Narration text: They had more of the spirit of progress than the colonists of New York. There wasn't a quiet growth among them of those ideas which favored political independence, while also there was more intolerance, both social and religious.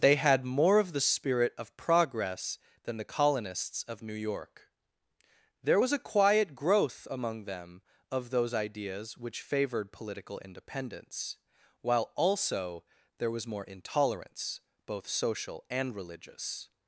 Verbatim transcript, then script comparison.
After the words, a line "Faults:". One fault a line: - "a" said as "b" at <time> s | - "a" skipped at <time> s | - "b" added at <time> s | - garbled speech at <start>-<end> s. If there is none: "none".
They had more of the spirit of progress than the colonists of New York. There was a quiet growth among them of those ideas which favored political independence, while also there was more intolerance, both social and religious.
Faults:
- "wasn't" said as "was" at 5.8 s